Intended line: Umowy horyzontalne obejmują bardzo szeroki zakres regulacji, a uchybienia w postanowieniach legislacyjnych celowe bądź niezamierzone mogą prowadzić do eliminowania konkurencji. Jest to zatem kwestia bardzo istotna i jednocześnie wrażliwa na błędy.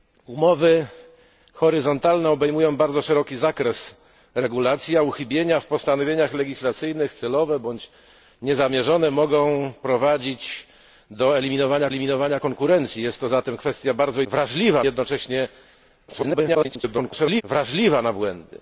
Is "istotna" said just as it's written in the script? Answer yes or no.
no